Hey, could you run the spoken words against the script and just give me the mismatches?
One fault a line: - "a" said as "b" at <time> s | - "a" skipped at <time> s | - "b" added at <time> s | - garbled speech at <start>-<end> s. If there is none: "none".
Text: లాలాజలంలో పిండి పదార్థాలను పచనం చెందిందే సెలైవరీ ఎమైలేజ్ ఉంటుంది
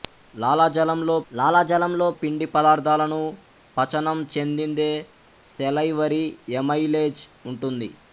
- "లాలాజలంలో" added at 1.3 s